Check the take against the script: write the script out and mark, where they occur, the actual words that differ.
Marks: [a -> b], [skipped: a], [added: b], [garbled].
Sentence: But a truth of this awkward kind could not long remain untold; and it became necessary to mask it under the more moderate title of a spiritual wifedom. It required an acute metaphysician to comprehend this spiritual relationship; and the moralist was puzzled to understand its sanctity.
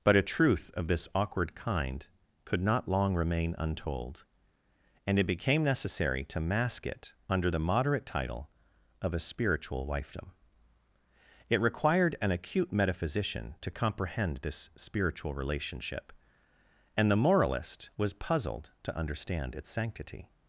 But a truth of this awkward kind could not long remain untold; and it became necessary to mask it under the [skipped: more] moderate title of a spiritual wifedom. It required an acute metaphysician to comprehend this spiritual relationship; and the moralist was puzzled to understand its sanctity.